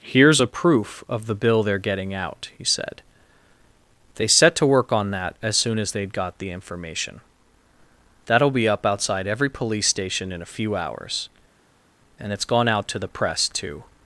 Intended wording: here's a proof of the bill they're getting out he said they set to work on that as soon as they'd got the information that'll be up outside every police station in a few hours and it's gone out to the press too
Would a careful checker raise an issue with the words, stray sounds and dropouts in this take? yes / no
no